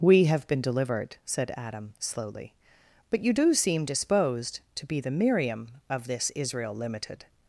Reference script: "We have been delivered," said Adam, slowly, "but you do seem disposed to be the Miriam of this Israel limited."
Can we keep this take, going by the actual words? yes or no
yes